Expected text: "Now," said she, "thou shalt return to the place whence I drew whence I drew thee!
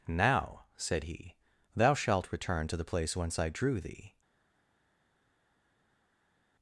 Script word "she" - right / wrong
wrong